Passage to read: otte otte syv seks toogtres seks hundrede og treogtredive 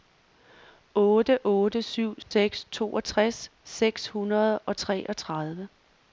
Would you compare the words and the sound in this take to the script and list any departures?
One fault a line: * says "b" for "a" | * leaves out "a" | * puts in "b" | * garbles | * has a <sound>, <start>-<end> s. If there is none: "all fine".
* has a dropout, 2.2-2.3 s